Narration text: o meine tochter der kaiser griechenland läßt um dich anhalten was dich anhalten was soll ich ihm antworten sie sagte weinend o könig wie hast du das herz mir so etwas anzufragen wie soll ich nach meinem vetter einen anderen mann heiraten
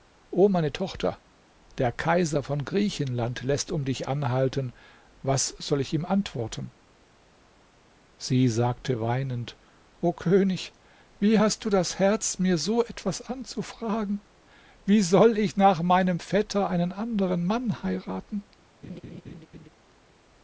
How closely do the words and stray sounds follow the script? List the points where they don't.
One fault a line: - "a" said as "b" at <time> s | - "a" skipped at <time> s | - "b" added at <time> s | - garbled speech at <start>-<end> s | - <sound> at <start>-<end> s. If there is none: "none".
- "von" added at 2.4 s
- "dich anhalten was" skipped at 5.5 s
- laugh at 18.8-19.7 s